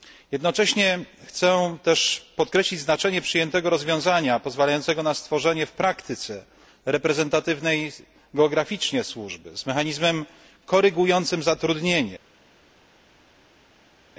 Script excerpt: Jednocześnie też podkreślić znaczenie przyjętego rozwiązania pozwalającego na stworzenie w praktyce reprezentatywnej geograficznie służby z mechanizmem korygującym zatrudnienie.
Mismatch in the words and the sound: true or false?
true